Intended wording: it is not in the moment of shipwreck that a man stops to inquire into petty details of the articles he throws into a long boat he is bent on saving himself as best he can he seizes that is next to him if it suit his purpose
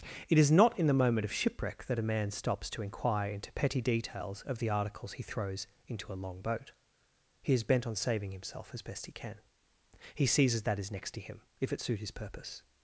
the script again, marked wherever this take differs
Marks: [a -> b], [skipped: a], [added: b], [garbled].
it is not in the moment of shipwreck that a man stops to inquire into petty details of the articles he throws into a long boat he is bent on saving himself as best he can he seizes that is next to him if it suit his purpose